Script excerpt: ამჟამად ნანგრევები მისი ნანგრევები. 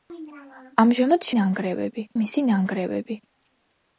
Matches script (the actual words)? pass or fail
pass